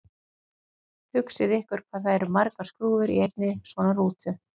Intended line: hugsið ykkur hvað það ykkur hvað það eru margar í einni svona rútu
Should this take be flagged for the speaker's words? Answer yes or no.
yes